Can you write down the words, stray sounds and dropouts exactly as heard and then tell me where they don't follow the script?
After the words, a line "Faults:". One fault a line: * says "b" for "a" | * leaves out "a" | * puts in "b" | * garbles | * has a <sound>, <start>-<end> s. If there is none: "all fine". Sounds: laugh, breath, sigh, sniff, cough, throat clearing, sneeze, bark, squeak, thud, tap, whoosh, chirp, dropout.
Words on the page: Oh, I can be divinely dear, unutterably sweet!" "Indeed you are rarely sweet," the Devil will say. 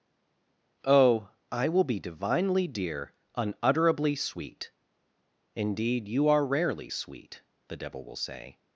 Oh, I will be divinely dear, unutterably sweet!" "Indeed you are rarely sweet," the Devil will say.
Faults:
* says "will" for "can"